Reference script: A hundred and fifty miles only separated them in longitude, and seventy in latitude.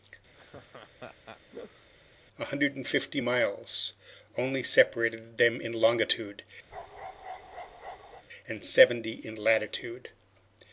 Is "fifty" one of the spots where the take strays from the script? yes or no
no